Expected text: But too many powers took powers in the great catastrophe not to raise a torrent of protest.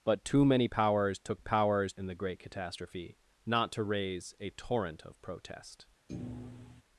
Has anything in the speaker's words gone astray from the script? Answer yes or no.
no